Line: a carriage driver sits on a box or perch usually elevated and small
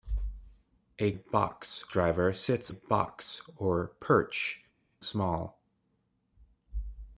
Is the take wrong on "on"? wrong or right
wrong